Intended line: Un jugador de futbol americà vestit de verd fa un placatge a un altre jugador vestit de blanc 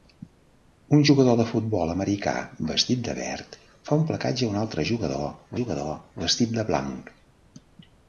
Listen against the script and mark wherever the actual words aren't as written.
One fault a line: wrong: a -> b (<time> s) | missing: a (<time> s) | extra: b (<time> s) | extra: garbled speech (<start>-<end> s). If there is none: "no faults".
extra: jugador (5.6 s)